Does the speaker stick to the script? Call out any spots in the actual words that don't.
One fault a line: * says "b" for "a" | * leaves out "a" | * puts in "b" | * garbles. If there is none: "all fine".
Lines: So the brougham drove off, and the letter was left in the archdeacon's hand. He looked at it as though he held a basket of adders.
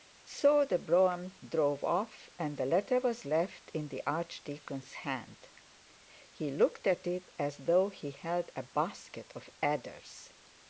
all fine